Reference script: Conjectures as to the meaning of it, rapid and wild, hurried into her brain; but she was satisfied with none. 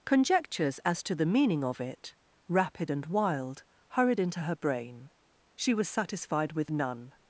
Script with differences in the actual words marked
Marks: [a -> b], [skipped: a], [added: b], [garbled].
Conjectures as to the meaning of it, rapid and wild, hurried into her brain; [skipped: but] she was satisfied with none.